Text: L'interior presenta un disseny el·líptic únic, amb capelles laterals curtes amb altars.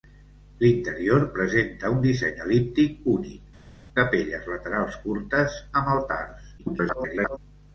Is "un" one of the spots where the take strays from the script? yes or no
no